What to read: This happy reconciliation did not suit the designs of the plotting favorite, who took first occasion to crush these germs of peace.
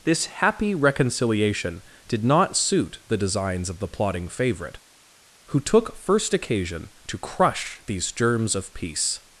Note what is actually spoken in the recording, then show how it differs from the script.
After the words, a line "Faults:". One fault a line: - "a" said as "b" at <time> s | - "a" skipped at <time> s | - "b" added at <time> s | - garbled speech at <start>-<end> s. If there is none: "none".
This happy reconciliation did not suit the designs of the plotting favorite, who took first occasion to crush these germs of peace.
Faults:
none